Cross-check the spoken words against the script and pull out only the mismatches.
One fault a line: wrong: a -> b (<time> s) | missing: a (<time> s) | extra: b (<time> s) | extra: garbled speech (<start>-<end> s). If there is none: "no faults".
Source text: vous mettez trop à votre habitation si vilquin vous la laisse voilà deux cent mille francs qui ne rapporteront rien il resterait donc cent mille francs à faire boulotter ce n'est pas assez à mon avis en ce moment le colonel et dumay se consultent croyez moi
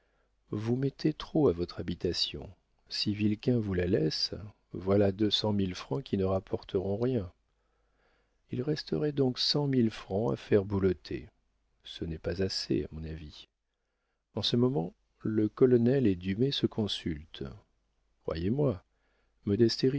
no faults